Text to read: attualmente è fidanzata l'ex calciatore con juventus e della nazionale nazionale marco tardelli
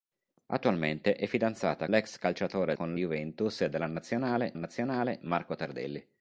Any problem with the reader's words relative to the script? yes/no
no